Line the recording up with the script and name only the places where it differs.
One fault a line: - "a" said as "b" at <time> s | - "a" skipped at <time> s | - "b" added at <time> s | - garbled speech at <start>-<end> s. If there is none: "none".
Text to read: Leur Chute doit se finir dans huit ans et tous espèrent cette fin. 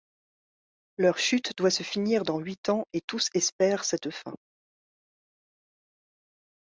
none